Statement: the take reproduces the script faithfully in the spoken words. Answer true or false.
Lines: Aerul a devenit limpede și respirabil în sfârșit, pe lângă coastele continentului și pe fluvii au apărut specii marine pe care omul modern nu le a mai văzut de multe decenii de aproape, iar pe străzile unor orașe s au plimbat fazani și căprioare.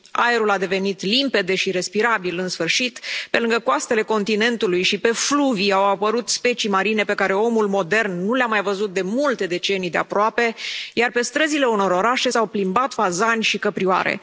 true